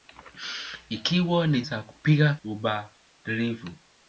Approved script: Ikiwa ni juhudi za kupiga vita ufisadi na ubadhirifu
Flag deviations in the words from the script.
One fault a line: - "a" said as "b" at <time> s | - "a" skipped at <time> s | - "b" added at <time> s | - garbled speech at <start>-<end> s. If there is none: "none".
- "juhudi" skipped at 1.6 s
- "vita ufisadi na" skipped at 2.4 s